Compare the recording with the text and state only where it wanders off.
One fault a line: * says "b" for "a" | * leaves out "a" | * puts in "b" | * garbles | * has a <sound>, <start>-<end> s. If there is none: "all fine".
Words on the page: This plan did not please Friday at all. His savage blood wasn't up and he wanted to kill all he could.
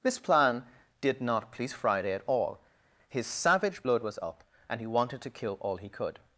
* says "was" for "wasn't"